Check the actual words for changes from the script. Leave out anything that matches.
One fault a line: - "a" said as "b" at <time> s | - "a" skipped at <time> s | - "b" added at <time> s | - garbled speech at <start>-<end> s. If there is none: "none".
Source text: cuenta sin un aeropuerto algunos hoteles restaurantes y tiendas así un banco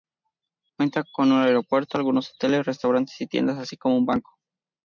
- "sin" said as "con" at 1.1 s
- "como" added at 3.8 s